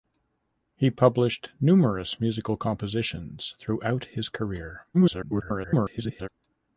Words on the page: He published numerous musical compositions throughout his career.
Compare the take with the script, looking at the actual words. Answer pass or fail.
fail